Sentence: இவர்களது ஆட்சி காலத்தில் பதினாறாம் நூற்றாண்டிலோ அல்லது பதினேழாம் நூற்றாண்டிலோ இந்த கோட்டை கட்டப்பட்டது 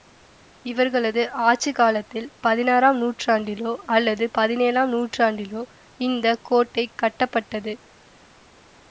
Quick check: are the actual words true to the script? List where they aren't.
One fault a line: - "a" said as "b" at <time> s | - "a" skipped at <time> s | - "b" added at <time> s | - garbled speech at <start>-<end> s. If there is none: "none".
none